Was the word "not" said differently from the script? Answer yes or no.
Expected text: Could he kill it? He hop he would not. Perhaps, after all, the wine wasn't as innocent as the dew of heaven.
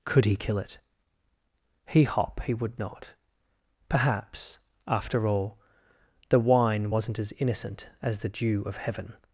no